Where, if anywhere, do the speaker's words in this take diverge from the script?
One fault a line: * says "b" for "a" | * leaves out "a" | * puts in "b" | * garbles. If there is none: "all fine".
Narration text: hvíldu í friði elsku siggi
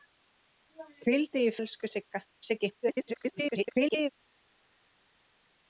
* leaves out "friði"
* garbles